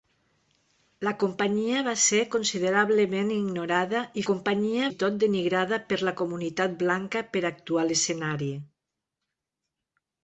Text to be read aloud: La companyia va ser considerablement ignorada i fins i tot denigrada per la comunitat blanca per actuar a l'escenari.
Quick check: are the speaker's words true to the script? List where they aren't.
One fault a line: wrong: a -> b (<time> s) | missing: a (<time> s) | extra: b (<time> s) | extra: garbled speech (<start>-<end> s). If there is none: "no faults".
wrong: fins -> companyia (4.3 s)